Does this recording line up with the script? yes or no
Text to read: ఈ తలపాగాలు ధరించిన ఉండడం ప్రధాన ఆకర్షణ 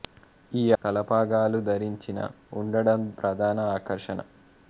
yes